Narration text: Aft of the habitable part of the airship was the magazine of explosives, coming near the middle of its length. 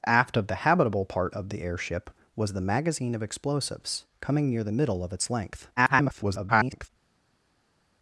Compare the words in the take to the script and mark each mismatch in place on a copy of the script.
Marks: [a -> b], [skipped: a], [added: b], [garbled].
Aft of the habitable part of the airship was the magazine of explosives, coming near the middle of its length. [garbled]